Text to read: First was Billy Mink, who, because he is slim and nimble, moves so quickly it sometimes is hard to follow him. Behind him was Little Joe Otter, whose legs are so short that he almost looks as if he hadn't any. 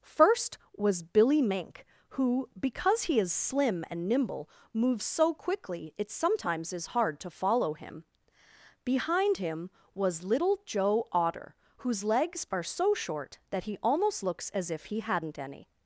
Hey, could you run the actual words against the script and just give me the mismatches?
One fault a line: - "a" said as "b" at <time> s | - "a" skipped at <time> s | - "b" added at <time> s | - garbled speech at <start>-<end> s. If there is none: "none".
none